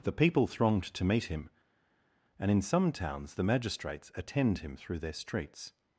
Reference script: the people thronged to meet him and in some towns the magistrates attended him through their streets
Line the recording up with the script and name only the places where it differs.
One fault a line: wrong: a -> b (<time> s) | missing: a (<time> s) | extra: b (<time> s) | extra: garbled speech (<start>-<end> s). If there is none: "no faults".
wrong: attended -> attend (4.1 s)